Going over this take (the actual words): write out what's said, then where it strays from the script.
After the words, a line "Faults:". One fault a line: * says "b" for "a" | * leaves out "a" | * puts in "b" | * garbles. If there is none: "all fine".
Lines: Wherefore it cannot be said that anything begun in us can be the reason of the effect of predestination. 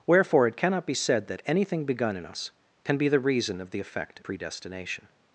Wherefore it cannot be said that anything begun in us can be the reason of the effect predestination.
Faults:
* leaves out "of"